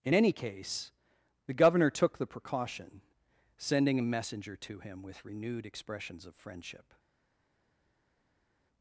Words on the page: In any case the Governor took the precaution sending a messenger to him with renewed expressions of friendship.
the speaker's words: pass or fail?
pass